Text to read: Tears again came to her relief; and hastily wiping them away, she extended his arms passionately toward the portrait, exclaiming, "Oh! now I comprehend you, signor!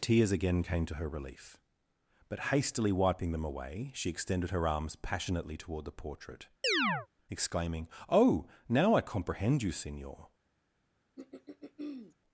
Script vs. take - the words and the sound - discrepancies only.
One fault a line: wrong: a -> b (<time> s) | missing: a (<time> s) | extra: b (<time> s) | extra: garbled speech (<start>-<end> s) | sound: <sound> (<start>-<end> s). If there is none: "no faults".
wrong: and -> but (2.3 s)
wrong: his -> her (4.5 s)
sound: chirp (6.6-7.1 s)
sound: throat clearing (11.2-12.2 s)